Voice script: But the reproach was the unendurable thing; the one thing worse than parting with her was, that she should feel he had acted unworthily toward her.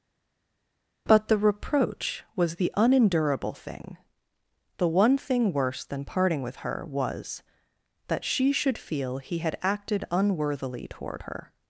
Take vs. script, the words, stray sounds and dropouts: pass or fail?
pass